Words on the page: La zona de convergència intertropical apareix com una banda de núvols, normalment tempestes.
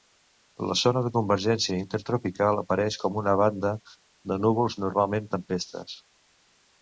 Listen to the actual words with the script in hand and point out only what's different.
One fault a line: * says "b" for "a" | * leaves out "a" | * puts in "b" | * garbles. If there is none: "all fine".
all fine